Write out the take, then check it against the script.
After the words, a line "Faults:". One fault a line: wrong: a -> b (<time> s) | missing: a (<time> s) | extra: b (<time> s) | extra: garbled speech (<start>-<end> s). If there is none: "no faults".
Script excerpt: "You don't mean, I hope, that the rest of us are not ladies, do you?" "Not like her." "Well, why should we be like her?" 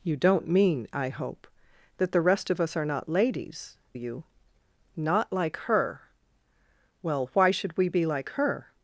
"You don't mean, I hope, that the rest of us are not ladies, you?" "Not like her." "Well, why should we be like her?"
Faults:
missing: do (3.8 s)